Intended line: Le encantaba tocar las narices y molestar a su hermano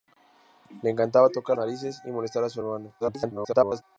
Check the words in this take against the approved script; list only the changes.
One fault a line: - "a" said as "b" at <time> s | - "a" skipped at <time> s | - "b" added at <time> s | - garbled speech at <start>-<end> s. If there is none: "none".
- "las" skipped at 1.6 s
- garbled speech at 3.0-3.8 s